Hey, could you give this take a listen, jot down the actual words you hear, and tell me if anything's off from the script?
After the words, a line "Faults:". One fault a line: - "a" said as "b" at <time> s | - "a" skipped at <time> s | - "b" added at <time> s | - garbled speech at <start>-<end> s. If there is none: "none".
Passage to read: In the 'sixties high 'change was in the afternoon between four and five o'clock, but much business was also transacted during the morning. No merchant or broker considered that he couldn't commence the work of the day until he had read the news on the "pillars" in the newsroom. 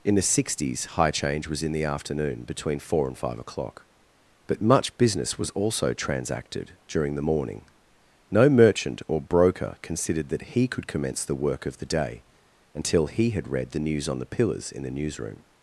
In the 'sixties high 'change was in the afternoon between four and five o'clock, but much business was also transacted during the morning. No merchant or broker considered that he could commence the work of the day until he had read the news on the "pillars" in the newsroom.
Faults:
- "couldn't" said as "could" at 10.7 s